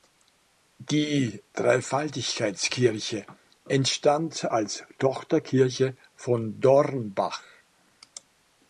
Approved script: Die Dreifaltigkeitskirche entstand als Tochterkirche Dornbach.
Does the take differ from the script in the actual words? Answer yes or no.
yes